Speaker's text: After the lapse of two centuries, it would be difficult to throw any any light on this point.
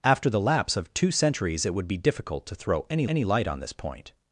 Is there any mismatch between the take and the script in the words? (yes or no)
no